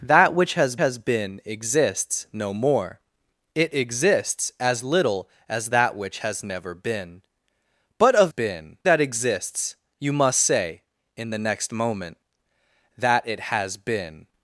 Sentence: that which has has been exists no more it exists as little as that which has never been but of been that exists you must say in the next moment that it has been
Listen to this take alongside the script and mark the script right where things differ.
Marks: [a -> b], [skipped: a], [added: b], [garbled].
that which has has been exists no more it exists as little as that which has never been but of been that exists you must say in the next moment that it has been